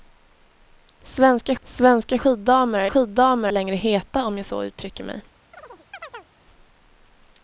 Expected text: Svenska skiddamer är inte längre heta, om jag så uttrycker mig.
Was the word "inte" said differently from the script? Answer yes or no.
yes